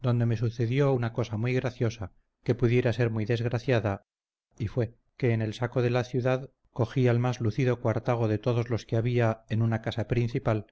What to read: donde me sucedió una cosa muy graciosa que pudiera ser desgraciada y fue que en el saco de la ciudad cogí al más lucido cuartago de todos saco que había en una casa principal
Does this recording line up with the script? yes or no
no